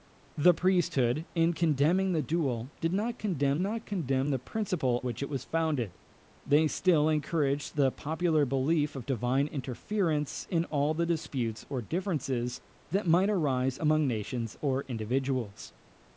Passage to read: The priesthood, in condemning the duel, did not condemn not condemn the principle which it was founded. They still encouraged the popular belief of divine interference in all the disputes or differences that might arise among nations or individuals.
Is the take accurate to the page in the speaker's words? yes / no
yes